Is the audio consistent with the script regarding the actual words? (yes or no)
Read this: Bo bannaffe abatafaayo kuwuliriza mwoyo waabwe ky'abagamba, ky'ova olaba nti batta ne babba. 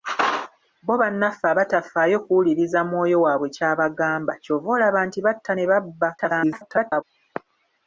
no